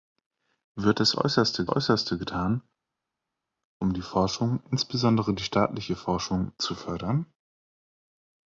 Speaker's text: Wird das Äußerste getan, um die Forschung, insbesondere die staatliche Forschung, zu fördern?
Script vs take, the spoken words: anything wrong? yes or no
yes